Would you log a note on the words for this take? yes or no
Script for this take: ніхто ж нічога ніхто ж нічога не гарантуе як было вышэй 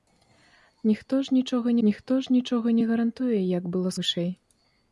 no